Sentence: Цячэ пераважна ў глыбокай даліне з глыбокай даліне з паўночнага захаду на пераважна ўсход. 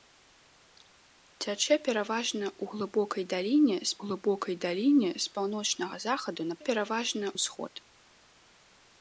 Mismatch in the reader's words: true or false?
false